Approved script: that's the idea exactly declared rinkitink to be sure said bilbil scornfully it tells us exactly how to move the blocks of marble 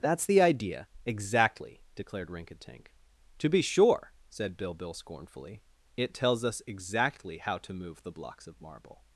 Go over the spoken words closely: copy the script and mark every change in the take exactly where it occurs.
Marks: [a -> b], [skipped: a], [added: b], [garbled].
that's the idea exactly declared rinkitink to be sure said bilbil scornfully it tells us exactly how to move the blocks of marble